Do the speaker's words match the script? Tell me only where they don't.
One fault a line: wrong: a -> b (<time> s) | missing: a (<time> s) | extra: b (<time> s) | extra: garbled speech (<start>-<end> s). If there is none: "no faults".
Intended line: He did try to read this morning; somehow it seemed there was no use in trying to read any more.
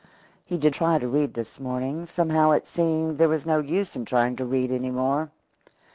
no faults